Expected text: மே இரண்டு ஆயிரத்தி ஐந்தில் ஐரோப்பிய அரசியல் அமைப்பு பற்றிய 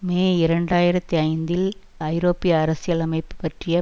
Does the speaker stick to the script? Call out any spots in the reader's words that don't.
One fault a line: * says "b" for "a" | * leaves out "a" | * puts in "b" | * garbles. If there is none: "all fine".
all fine